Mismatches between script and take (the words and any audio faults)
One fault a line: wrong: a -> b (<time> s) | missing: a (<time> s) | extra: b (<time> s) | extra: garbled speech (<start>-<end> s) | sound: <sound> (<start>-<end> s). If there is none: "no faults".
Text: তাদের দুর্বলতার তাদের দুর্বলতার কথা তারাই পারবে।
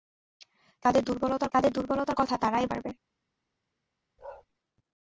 sound: bark (4.2-4.5 s)